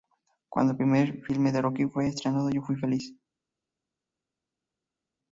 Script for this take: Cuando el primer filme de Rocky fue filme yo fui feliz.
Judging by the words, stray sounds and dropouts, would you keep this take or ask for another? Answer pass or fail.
fail